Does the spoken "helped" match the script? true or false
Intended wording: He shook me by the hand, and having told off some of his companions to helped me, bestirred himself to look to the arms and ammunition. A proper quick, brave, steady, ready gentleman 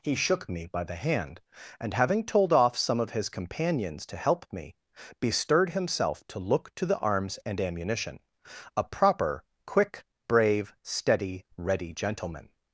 false